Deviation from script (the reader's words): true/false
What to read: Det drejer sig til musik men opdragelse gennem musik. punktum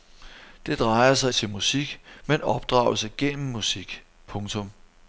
false